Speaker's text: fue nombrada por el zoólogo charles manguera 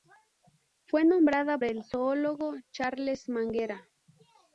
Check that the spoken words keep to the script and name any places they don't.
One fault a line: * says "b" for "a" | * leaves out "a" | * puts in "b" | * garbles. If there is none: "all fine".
* leaves out "por"